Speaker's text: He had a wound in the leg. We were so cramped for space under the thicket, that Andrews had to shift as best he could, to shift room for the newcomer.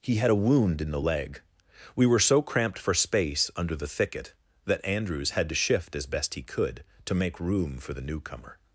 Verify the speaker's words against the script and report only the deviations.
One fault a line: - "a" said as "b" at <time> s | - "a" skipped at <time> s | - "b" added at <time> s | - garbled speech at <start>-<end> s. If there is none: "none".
- "shift" said as "make" at 7.2 s